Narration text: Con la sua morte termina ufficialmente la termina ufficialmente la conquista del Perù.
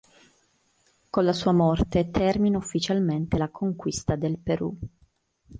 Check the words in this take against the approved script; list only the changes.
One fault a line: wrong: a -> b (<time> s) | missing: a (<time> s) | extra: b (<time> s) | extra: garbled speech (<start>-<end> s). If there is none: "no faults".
missing: termina ufficialmente la (3.5 s)